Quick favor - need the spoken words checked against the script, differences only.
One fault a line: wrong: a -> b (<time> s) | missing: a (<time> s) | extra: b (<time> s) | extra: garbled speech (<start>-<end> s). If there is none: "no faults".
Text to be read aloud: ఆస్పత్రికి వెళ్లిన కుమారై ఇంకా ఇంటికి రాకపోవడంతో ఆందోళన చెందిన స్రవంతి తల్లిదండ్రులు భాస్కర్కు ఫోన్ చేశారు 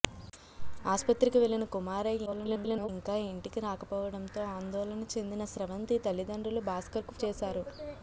extra: garbled speech (2.3-2.9 s)
missing: ఫోన్ (7.2 s)